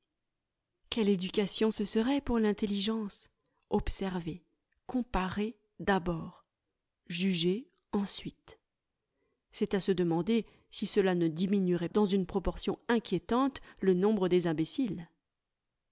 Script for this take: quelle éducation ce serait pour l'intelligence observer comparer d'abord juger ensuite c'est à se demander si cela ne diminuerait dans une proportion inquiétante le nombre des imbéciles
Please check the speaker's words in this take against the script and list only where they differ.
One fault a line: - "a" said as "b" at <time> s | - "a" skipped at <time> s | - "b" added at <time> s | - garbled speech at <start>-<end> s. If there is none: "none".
none